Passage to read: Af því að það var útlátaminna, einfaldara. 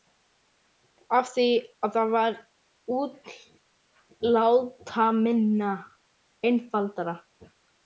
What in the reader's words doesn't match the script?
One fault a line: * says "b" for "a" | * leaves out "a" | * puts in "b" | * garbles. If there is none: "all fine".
all fine